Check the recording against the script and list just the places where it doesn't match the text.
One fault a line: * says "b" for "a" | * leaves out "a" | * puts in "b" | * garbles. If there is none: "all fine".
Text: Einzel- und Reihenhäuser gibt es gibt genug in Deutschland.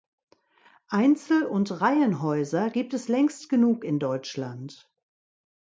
* says "längst" for "gibt"